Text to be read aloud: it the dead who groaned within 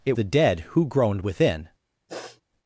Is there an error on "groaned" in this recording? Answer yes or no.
no